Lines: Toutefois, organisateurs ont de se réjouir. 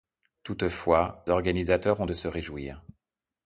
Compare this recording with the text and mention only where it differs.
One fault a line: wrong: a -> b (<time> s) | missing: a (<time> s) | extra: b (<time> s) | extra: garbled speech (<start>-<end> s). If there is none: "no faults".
no faults